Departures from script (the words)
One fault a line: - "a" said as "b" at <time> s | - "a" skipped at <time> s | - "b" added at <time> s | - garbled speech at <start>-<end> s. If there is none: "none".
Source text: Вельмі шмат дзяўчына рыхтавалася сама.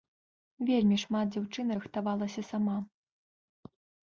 none